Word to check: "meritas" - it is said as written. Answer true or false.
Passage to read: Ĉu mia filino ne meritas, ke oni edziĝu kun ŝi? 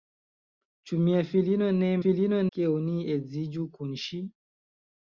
false